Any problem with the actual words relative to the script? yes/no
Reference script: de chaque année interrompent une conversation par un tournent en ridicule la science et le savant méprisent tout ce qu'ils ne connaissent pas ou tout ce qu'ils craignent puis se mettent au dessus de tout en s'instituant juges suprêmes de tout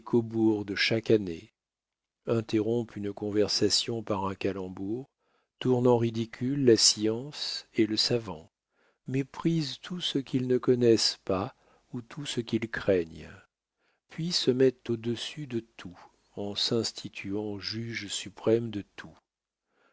yes